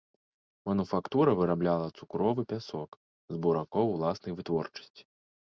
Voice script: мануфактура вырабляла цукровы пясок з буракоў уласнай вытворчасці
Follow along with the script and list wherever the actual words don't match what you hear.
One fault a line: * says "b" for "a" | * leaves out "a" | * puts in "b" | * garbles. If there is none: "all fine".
all fine